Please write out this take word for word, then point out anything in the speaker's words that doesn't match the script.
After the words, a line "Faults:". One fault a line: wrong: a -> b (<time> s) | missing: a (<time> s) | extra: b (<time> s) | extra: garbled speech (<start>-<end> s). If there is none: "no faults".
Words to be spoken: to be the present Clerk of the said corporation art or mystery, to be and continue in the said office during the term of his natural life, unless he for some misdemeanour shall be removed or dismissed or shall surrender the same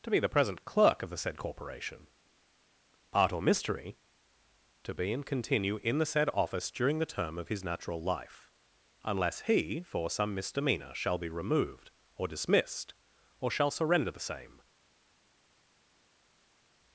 to be the present Clerk of the said corporation art or mystery, to be and continue in the said office during the term of his natural life, unless he for some misdemeanour shall be removed or dismissed or shall surrender the same
Faults:
no faults